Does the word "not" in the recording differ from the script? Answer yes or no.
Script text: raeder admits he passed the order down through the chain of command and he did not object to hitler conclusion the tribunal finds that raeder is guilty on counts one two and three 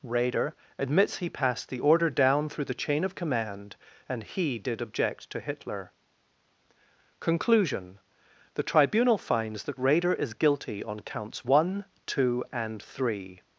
yes